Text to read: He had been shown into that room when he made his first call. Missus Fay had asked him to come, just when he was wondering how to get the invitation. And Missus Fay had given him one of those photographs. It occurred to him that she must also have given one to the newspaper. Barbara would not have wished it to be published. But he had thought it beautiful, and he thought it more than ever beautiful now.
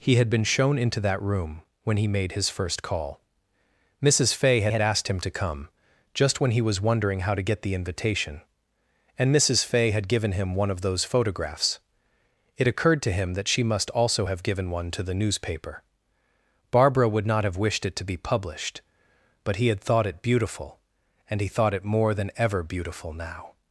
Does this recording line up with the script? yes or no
no